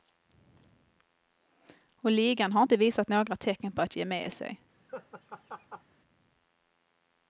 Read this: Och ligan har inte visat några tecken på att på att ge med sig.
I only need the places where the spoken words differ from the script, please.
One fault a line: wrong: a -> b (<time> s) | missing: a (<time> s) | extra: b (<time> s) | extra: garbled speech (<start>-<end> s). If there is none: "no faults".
missing: på att (4.0 s)